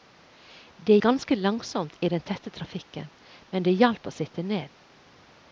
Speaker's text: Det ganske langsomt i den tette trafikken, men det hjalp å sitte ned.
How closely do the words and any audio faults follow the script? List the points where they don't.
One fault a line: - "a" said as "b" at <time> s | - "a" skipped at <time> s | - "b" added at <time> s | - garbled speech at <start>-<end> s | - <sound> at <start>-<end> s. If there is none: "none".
none